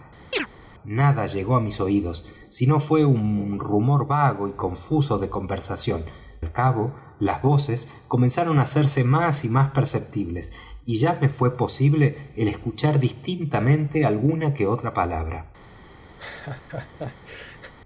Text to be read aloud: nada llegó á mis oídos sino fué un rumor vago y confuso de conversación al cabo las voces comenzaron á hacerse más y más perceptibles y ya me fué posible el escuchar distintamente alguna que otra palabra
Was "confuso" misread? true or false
false